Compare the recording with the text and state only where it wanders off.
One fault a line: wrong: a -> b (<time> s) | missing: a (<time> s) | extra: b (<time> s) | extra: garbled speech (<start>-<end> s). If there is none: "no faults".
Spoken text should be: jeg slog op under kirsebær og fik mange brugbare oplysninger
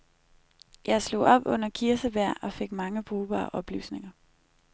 no faults